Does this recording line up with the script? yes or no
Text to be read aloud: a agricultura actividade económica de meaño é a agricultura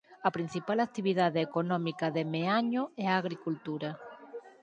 no